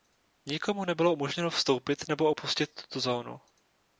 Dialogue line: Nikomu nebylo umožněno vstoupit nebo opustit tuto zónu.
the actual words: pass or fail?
pass